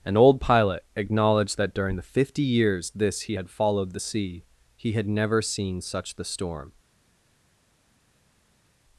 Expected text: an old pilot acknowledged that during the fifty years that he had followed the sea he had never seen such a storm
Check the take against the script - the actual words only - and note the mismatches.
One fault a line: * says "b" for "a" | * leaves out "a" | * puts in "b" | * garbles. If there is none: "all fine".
* says "this" for "that"
* says "the" for "a"